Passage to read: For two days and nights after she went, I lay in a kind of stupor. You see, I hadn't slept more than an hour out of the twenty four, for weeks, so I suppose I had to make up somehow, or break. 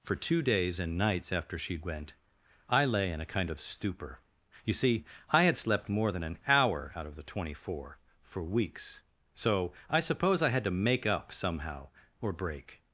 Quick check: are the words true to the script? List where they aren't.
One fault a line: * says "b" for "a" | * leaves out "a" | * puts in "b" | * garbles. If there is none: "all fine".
* says "had" for "hadn't"